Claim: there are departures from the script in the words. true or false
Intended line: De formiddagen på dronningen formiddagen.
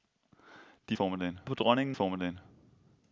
false